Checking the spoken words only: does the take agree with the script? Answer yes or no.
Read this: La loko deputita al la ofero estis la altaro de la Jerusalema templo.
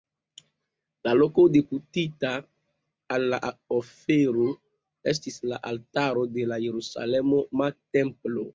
yes